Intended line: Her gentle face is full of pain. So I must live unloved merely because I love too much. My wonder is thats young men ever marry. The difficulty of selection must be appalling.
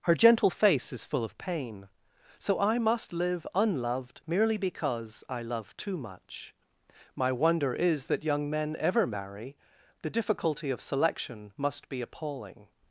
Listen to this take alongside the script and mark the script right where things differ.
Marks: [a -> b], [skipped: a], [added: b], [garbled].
Her gentle face is full of pain. So I must live unloved merely because I love too much. My wonder is [thats -> that] young men ever marry. The difficulty of selection must be appalling.